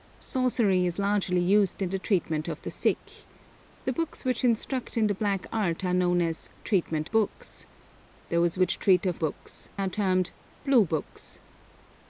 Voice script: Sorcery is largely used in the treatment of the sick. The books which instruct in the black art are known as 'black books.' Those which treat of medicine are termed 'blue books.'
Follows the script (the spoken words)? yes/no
no